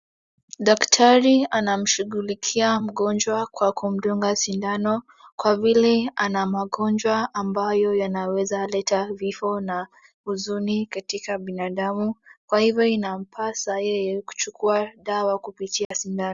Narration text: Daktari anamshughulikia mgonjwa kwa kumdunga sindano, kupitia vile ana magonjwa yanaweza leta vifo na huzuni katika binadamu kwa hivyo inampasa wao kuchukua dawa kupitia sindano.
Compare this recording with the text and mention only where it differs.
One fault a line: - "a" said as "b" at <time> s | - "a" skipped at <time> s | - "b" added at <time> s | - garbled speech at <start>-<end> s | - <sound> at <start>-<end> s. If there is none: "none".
- "kupitia" said as "kwa" at 5.4 s
- "ambayo" added at 7.3 s
- "wao" said as "yeye" at 13.8 s
- dropout at 15.9-15.9 s